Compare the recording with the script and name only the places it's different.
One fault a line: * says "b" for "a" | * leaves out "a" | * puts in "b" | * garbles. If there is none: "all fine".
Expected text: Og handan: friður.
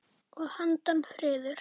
all fine